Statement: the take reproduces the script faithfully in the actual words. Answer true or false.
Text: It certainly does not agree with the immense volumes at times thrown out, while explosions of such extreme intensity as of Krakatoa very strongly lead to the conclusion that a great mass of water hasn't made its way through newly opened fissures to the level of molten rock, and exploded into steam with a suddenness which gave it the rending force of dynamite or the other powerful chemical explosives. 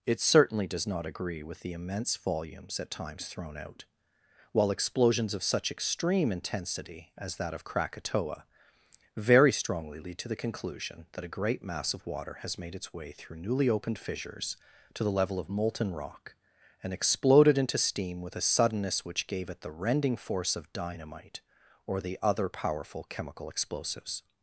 false